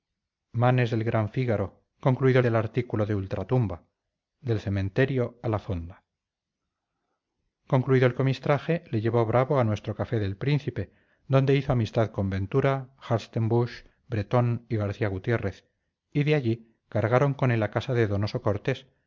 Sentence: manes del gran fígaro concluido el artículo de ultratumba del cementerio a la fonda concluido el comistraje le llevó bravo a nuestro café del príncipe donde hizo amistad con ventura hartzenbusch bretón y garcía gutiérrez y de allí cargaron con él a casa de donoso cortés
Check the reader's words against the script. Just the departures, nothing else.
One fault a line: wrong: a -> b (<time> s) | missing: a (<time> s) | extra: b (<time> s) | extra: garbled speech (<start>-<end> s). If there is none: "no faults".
no faults